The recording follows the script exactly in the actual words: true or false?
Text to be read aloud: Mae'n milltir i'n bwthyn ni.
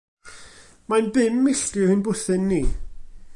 false